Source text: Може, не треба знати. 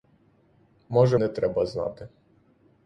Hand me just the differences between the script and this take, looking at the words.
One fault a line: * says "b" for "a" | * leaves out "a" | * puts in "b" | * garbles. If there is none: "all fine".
all fine